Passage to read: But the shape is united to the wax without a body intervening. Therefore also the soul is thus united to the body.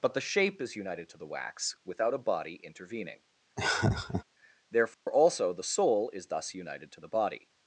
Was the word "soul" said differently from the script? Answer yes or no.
no